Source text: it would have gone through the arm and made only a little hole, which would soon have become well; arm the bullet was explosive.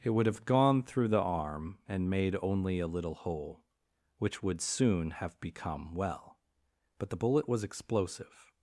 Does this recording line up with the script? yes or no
no